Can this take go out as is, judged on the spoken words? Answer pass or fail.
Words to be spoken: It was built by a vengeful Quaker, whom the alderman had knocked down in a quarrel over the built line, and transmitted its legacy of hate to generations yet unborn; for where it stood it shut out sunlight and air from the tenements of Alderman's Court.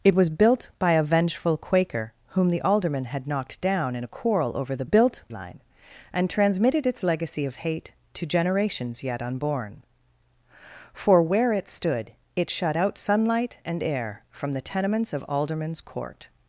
pass